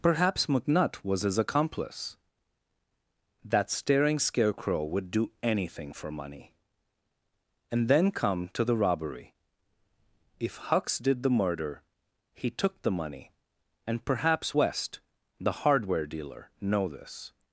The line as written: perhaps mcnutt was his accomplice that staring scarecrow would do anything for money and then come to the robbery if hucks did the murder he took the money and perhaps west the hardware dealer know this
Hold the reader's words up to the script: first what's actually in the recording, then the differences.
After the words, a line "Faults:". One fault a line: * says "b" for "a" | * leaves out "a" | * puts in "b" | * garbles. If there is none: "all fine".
perhaps mcnutt was his accomplice that staring scarecrow would do anything for money and then come to the robbery if hucks did the murder he took the money and perhaps west the hardware dealer know this
Faults:
all fine